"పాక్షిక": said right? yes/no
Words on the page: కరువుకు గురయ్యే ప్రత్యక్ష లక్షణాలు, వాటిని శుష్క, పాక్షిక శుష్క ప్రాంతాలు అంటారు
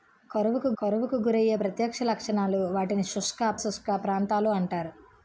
no